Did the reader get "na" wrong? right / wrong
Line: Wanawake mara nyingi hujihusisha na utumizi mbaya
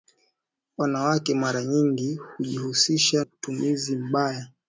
wrong